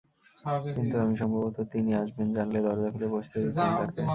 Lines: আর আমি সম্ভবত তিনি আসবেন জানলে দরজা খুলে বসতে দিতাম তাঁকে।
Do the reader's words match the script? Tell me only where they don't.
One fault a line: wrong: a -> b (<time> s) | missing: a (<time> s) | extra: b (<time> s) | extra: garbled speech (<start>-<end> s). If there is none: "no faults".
wrong: আর -> কিন্তু (0.7 s)